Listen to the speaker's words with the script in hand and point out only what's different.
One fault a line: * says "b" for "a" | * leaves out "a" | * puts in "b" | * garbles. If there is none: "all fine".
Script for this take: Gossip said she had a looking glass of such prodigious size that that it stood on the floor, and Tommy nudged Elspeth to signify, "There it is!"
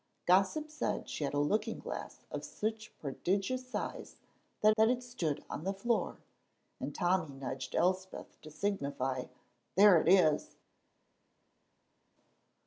all fine